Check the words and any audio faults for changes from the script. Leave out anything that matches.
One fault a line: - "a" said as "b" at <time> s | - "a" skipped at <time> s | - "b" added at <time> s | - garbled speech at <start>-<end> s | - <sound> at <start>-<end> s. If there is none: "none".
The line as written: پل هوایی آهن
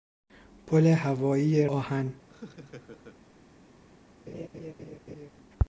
- laugh at 2.3-3.2 s
- laugh at 4.3-5.3 s